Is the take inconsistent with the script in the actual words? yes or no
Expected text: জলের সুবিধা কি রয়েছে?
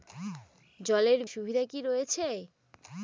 no